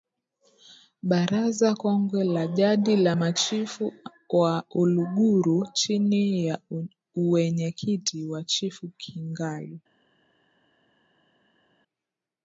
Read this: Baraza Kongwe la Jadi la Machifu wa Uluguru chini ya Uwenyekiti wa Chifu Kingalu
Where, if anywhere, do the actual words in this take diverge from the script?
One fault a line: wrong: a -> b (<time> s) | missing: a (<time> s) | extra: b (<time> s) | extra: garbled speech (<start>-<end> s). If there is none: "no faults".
no faults